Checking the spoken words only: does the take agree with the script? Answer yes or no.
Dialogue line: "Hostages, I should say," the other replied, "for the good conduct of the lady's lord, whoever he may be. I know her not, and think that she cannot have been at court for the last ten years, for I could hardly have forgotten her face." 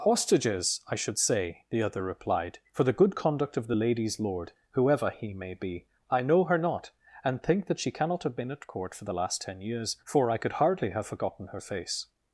yes